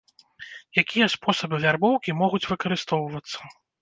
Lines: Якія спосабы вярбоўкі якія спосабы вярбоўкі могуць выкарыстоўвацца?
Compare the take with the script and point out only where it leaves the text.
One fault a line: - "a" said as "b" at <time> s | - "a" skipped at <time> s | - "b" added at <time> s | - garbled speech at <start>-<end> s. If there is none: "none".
- "якія спосабы вярбоўкі" skipped at 2.2 s